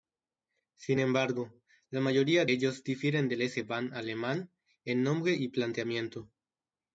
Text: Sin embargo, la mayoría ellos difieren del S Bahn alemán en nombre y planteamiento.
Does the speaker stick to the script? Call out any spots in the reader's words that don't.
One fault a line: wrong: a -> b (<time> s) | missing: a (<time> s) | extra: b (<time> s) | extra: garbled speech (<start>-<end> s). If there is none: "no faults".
no faults